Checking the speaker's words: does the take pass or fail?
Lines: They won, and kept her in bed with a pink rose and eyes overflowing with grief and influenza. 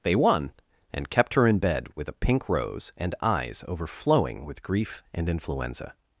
pass